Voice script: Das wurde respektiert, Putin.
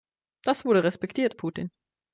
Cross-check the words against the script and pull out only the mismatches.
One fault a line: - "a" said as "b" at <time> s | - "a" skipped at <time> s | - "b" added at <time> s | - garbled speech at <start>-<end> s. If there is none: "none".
none